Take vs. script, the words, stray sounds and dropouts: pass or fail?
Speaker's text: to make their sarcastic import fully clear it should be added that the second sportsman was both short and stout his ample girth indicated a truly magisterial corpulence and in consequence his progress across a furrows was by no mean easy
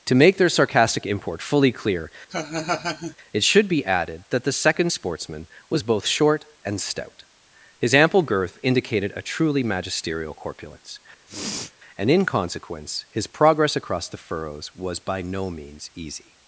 fail